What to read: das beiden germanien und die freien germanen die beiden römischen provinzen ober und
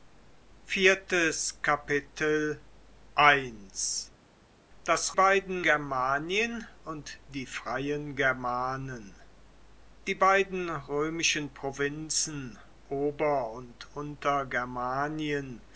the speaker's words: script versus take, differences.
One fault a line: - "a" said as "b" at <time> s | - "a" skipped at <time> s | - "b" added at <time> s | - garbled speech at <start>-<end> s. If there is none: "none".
none